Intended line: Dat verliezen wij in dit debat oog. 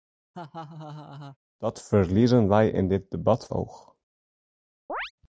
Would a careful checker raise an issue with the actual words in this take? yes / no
no